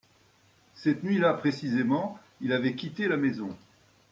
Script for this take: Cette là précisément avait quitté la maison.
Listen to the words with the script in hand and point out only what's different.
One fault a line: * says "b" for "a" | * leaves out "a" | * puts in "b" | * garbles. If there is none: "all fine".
* puts in "nuit"
* puts in "il"